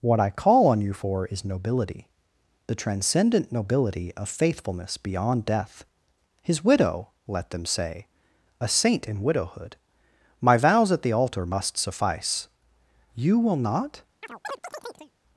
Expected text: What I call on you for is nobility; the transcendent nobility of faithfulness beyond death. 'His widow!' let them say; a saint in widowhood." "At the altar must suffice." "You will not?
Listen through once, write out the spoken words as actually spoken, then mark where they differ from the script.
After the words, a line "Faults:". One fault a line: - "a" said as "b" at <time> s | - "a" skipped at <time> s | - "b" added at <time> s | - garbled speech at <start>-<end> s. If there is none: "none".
What I call on you for is nobility; the transcendent nobility of faithfulness beyond death. 'His widow!' let them say; a saint in widowhood." "My vows at the altar must suffice." "You will not?
Faults:
- "My vows" added at 10.4 s